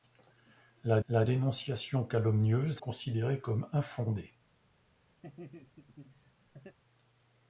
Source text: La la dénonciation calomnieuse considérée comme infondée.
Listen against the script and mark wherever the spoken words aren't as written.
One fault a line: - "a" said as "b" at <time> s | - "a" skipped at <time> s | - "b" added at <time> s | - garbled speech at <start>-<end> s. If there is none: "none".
none